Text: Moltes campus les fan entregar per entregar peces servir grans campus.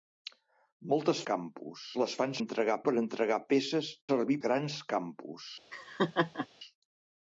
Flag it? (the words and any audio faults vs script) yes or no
yes